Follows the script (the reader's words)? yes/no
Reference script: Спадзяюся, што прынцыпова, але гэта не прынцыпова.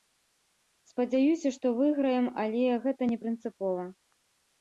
no